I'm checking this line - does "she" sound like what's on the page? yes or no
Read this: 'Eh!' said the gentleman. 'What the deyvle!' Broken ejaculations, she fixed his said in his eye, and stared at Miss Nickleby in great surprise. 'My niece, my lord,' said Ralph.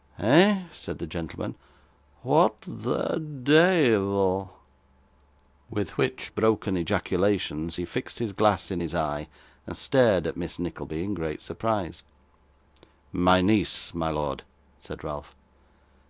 no